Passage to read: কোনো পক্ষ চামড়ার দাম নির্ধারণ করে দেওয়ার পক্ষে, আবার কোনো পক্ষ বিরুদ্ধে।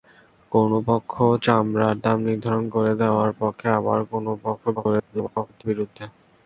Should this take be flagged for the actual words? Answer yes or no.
yes